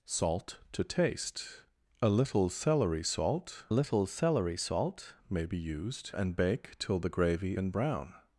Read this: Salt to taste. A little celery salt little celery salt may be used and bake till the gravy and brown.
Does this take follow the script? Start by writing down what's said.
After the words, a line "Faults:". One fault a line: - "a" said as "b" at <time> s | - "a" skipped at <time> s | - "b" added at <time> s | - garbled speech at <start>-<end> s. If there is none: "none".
Salt to taste. A little celery salt little celery salt may be used and bake till the gravy and brown.
Faults:
none